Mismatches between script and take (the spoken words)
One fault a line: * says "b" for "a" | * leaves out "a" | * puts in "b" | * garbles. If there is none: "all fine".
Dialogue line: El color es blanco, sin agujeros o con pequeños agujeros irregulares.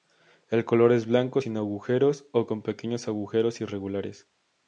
all fine